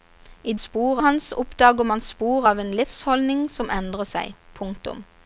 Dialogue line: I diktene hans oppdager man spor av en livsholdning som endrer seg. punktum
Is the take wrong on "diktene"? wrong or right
wrong